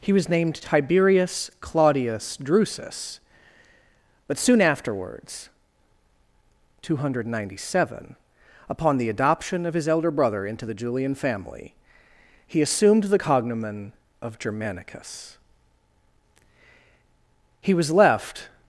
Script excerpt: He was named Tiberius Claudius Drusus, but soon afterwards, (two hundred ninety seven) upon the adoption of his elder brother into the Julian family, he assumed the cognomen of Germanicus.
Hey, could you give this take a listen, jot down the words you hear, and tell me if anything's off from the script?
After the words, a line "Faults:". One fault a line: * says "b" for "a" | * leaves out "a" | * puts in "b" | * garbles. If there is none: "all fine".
He was named Tiberius Claudius Drusus, but soon afterwards, (two hundred ninety seven) upon the adoption of his elder brother into the Julian family, he assumed the cognomen of Germanicus. He was left
Faults:
* puts in "He was left"